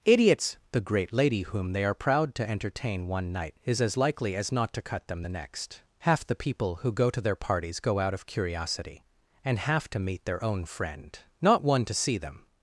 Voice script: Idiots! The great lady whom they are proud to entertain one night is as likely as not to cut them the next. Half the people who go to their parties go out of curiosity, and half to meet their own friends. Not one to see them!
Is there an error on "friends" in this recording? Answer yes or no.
yes